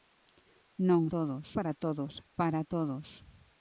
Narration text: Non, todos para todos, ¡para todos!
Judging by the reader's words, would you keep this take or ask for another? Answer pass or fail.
pass